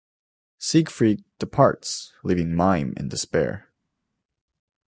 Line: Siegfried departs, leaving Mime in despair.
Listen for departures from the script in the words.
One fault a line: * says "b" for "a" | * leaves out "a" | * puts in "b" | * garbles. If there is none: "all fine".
all fine